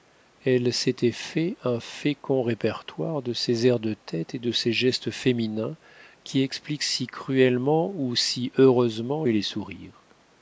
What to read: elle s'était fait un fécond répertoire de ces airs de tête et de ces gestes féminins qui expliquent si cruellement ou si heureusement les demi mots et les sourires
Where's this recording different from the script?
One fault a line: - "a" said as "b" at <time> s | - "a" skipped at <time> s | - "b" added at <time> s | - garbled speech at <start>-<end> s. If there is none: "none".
- "les demi mots" skipped at 9.2 s